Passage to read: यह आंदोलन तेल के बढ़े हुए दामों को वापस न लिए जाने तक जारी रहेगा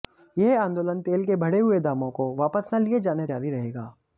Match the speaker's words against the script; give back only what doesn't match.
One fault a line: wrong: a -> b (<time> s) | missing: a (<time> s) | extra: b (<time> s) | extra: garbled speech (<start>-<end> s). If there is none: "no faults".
missing: तक (3.3 s)